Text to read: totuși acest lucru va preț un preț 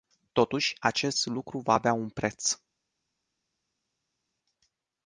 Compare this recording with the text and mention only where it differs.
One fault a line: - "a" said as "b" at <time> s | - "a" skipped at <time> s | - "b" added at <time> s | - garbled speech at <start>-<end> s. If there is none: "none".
- "preț" said as "avea" at 1.7 s